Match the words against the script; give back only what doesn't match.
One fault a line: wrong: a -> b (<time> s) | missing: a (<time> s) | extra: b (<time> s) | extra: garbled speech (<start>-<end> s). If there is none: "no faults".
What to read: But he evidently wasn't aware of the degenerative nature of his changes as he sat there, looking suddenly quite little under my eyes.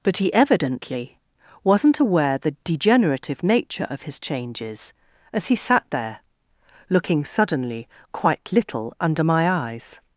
missing: of (2.4 s)